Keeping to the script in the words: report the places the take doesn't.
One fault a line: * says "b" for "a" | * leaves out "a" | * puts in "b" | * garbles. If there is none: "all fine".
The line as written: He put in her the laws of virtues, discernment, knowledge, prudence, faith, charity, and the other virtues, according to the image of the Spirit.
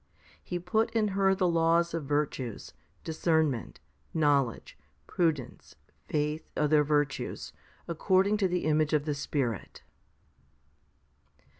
* leaves out "charity and the"